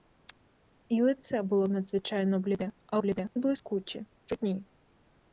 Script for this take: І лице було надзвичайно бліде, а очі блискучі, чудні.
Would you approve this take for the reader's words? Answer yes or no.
no